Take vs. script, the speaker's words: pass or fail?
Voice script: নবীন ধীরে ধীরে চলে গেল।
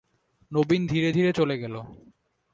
pass